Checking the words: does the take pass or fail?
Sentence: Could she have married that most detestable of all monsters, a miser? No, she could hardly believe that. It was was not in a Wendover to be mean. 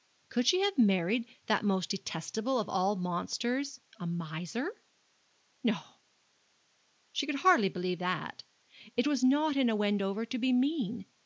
fail